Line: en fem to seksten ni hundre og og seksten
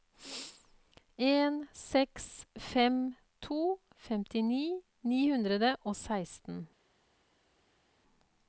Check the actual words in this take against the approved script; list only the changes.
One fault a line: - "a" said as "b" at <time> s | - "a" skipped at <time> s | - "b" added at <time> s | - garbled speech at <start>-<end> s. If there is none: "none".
- "seks" added at 1.7 s
- "seksten" said as "femtini" at 4.1 s
- "og" skipped at 5.9 s